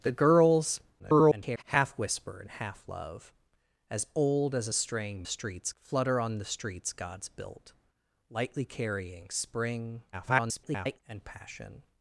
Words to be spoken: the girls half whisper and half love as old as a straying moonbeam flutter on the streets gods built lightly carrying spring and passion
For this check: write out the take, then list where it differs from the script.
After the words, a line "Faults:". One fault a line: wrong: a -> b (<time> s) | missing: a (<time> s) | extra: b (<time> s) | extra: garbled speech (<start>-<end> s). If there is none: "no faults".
the girls [garbled] half whisper and half love as old as a straying streets flutter on the streets gods built lightly carrying spring [garbled] and passion
Faults:
extra: garbled speech (1.0-1.6 s)
wrong: moonbeam -> streets (5.2 s)
extra: garbled speech (10.1-11.0 s)